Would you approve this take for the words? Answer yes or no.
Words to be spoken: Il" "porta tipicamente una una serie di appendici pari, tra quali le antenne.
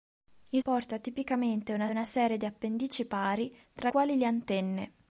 yes